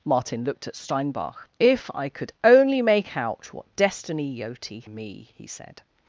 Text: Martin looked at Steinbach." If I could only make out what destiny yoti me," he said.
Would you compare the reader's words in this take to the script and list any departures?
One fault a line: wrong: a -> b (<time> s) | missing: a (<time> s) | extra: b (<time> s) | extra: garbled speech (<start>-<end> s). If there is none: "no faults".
no faults